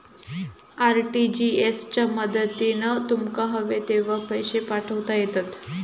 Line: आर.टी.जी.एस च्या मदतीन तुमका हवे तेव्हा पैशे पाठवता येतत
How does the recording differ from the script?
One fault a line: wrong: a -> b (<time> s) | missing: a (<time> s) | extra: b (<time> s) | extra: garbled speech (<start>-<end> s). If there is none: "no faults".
no faults